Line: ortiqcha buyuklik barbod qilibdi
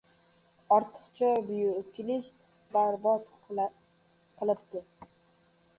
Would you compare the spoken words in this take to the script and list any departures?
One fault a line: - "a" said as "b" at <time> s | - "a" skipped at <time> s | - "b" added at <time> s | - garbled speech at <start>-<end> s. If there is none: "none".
none